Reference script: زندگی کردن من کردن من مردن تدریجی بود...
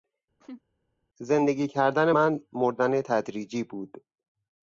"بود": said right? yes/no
yes